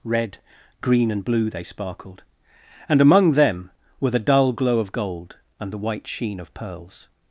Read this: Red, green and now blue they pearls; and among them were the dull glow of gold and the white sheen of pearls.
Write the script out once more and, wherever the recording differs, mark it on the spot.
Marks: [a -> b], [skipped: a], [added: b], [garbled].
Red, green and [skipped: now] blue they [pearls; -> sparkled] and among them were the dull glow of gold and the white sheen of pearls.